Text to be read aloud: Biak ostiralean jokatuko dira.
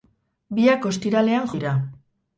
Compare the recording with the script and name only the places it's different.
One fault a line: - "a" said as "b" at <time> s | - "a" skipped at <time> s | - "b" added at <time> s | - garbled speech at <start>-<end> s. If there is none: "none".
- "jokatuko" skipped at 1.5 s